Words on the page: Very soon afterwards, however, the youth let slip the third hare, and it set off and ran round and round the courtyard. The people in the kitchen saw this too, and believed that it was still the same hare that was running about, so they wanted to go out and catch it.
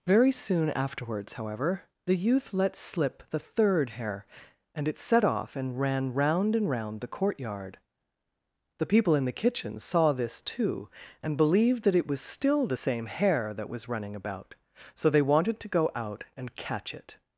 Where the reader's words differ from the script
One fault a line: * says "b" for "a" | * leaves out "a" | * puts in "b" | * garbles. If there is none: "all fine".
all fine